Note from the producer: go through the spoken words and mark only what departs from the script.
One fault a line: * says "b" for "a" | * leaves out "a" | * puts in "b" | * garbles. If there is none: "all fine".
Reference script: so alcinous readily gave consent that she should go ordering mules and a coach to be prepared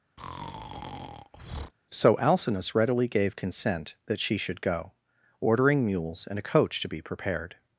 all fine